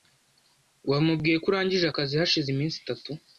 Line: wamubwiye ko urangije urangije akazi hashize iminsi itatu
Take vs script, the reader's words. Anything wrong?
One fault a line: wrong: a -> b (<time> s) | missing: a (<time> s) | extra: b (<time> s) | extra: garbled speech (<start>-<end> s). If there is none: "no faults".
missing: urangije (1.8 s)